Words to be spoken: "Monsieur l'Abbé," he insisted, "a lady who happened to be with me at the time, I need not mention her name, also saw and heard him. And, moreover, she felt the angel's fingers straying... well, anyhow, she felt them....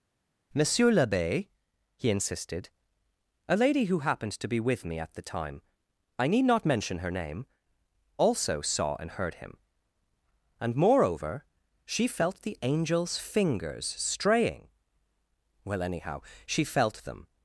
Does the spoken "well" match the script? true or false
true